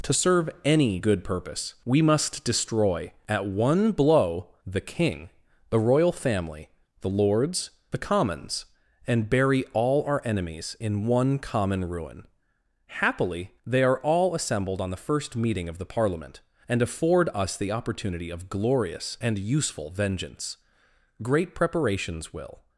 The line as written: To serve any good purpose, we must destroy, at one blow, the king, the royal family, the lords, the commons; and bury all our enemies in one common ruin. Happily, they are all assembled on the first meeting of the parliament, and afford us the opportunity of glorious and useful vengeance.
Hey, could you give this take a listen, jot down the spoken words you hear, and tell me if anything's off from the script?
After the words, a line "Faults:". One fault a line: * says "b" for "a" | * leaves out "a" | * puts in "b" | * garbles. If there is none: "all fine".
To serve any good purpose, we must destroy, at one blow, the king, the royal family, the lords, the commons; and bury all our enemies in one common ruin. Happily, they are all assembled on the first meeting of the parliament, and afford us the opportunity of glorious and useful vengeance. Great preparations will
Faults:
* puts in "Great preparations will"